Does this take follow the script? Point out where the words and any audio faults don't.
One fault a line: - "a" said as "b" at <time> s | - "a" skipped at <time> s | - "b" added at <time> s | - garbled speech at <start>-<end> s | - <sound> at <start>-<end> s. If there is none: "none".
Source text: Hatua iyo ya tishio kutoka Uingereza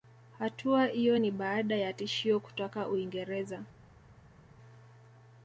- "ni baada" added at 1.2 s